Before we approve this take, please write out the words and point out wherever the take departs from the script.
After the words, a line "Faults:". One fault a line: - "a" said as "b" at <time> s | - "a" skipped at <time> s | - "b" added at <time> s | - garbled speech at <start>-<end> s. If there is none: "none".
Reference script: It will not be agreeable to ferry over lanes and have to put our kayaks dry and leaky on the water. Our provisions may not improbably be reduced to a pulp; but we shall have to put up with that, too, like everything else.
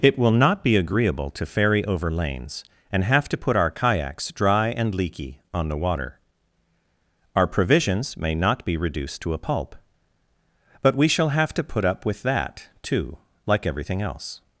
It will not be agreeable to ferry over lanes and have to put our kayaks dry and leaky on the water. Our provisions may not be reduced to a pulp; but we shall have to put up with that, too, like everything else.
Faults:
- "improbably" skipped at 8.7 s